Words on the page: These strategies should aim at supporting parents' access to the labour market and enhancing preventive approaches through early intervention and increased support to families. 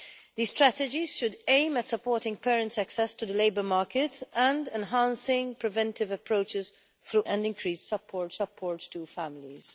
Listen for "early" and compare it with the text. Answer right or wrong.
wrong